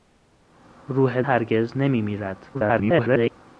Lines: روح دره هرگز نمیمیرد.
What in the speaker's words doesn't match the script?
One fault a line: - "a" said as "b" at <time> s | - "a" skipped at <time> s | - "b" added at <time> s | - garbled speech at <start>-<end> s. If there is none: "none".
- "دره" skipped at 1.2 s
- garbled speech at 2.5-3.3 s